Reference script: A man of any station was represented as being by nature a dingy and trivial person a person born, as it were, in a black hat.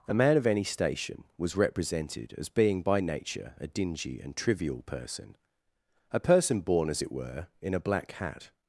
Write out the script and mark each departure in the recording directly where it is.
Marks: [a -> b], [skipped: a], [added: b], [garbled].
A man of any station was represented as being by nature a dingy and trivial person a person born, as it were, in a black hat.